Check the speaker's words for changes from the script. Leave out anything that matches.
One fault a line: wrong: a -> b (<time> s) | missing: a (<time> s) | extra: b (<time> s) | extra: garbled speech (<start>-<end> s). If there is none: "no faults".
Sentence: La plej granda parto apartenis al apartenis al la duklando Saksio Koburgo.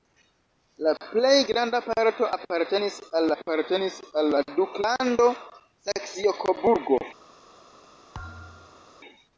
no faults